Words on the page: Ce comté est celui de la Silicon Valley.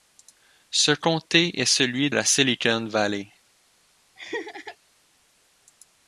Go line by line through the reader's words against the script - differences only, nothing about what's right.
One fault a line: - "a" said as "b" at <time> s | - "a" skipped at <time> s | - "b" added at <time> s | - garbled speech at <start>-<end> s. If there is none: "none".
- "de" skipped at 2.1 s